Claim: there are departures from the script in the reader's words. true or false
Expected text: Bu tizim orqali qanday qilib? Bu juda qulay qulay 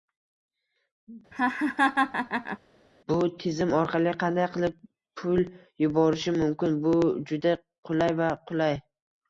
true